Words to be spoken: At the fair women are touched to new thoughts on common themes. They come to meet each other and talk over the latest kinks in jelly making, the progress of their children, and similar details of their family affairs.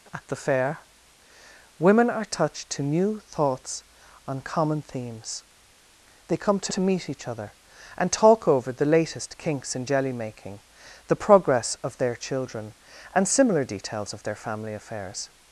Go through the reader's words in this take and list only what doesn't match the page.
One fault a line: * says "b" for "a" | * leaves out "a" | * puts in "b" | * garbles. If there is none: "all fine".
* puts in "to"